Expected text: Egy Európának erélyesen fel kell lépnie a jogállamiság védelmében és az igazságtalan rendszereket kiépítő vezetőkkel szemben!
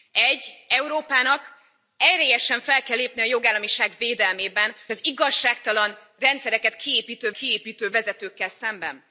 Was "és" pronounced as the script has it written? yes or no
no